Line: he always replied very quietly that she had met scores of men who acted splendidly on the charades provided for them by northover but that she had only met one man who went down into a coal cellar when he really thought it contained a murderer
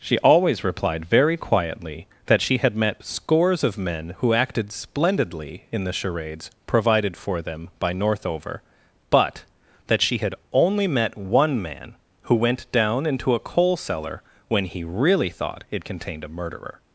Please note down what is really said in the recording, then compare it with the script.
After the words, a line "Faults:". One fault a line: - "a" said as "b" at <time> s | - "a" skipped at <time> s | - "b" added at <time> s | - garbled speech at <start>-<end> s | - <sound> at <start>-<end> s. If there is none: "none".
she always replied very quietly that she had met scores of men who acted splendidly in the charades provided for them by northover but that she had only met one man who went down into a coal cellar when he really thought it contained a murderer
Faults:
- "he" said as "she" at 0.0 s
- "on" said as "in" at 5.7 s